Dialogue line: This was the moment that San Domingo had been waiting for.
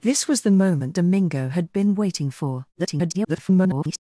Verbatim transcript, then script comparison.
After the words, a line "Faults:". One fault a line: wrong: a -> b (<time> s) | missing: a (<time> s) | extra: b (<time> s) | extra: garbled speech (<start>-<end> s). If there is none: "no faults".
This was the moment Domingo had been waiting for. [garbled]
Faults:
missing: that San (0.9 s)
extra: garbled speech (2.7-4.0 s)